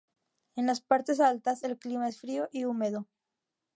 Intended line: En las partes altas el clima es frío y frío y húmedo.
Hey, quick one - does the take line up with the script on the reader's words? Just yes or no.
no